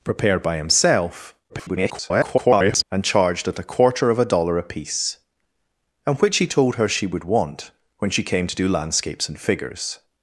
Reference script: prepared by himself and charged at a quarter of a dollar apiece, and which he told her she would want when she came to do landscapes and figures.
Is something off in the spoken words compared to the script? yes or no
yes